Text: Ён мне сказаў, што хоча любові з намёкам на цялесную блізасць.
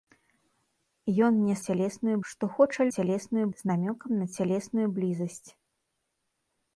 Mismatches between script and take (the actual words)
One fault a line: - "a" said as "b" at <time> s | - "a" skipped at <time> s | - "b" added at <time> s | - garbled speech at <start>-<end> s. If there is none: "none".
- "сказаў" said as "цялесную" at 1.7 s
- "любові" said as "цялесную" at 3.0 s